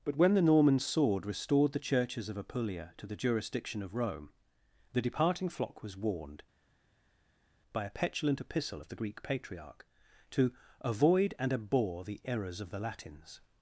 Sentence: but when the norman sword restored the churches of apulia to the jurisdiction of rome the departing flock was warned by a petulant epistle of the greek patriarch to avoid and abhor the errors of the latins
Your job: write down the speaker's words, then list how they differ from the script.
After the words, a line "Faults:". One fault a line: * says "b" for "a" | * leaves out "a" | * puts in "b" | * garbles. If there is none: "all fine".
but when the norman sword restored the churches of apulia to the jurisdiction of rome the departing flock was warned by a petulant epistle of the greek patriarch to avoid and abhor the errors of the latins
Faults:
all fine